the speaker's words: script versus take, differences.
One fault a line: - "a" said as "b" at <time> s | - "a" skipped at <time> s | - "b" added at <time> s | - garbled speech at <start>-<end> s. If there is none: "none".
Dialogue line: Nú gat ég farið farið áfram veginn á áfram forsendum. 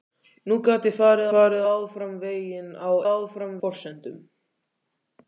none